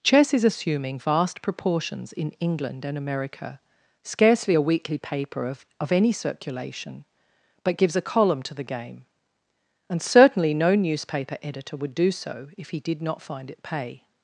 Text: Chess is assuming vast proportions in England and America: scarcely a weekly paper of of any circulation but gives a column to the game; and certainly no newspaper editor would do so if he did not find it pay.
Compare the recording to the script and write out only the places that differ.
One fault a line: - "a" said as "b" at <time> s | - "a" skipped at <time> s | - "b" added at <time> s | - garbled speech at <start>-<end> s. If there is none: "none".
none